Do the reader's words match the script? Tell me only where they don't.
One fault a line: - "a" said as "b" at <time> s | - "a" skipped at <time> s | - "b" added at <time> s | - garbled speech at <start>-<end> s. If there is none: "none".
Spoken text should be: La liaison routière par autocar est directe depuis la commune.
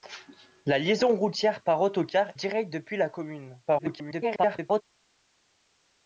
- "est" skipped at 2.3 s
- garbled speech at 3.7-4.8 s